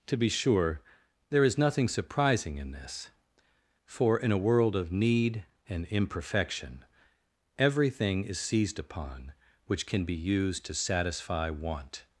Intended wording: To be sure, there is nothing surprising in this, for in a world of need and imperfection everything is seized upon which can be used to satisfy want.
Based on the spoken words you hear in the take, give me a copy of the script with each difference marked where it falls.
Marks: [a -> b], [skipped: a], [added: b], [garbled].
To be sure, there is nothing surprising in this, for in a world of need and imperfection everything is seized upon which can be used to satisfy want.